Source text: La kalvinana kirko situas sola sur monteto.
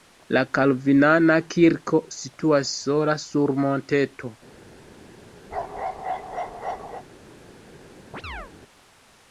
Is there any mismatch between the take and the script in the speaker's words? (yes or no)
no